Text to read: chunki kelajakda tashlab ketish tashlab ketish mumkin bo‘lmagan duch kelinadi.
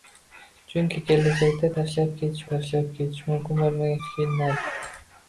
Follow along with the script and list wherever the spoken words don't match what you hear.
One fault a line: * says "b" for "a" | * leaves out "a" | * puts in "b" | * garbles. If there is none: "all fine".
all fine